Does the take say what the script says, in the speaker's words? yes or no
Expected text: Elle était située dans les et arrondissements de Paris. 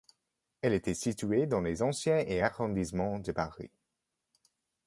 no